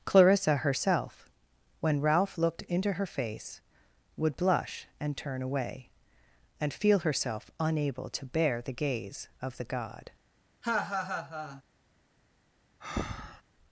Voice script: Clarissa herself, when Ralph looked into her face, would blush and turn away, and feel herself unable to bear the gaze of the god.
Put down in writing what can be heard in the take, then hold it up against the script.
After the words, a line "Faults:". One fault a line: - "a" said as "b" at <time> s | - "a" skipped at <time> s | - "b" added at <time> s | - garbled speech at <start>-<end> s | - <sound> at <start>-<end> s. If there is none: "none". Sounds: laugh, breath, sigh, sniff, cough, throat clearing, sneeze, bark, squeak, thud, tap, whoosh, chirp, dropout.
Clarissa herself, when Ralph looked into her face, would blush and turn away, and feel herself unable to bear the gaze of the god.
Faults:
- laugh at 10.6-11.6 s
- breath at 12.8-13.4 s